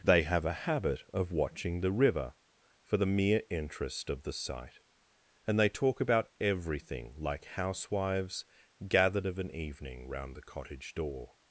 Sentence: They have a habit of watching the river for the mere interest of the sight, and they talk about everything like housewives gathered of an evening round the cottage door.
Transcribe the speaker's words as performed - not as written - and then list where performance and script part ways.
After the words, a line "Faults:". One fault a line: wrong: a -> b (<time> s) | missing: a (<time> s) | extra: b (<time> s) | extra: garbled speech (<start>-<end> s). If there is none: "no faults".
They have a habit of watching the river for the mere interest of the sight, and they talk about everything like housewives gathered of an evening round the cottage door.
Faults:
no faults